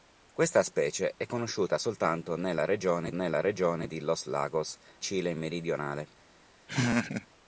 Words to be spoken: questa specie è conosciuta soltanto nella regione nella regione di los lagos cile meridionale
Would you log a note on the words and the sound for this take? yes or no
yes